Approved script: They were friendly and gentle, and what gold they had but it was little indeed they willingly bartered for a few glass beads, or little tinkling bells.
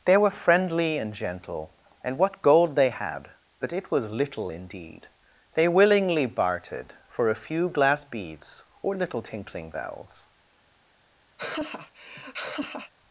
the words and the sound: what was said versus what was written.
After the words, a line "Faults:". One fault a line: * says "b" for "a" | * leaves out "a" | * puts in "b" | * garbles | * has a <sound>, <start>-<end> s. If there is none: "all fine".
They were friendly and gentle, and what gold they had but it was little indeed they willingly bartered for a few glass beads, or little tinkling bells.
Faults:
* has a laugh, 11.4-12.9 s